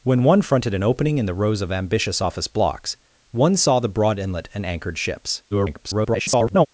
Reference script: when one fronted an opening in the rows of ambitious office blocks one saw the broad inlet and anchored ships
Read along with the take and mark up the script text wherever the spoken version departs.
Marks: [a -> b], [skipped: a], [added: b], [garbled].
when one fronted an opening in the rows of ambitious office blocks one saw the broad inlet and anchored ships [garbled]